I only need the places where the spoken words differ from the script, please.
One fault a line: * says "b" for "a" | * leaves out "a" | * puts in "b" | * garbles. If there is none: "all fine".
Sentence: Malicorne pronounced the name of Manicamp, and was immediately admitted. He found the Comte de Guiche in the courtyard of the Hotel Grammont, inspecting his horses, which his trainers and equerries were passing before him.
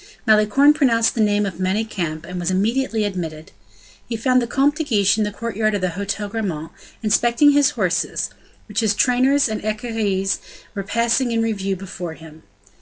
* puts in "in review"